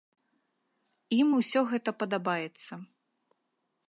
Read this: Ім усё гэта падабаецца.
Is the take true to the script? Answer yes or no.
yes